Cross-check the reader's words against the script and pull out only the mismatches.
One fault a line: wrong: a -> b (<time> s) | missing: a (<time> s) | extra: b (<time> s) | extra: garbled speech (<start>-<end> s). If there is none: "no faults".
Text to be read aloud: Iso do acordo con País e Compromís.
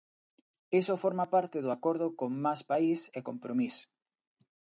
extra: forma parte (1.0 s)
extra: Más (2.5 s)